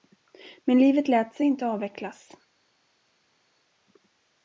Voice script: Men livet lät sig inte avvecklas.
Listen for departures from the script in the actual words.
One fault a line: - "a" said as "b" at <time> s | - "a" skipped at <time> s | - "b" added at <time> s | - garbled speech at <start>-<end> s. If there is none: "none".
none